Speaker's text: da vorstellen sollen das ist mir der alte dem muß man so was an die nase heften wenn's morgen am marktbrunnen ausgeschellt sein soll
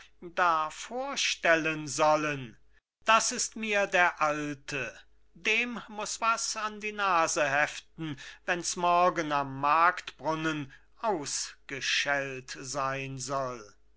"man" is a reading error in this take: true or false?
true